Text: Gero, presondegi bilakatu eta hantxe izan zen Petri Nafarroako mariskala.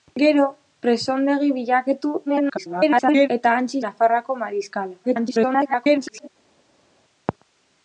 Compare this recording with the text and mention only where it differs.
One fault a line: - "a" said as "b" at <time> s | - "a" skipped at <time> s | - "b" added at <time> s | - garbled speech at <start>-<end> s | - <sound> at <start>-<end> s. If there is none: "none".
- garbled speech at 2.3-3.3 s
- "izan zen Petri" skipped at 3.8 s
- garbled speech at 5.0-6.3 s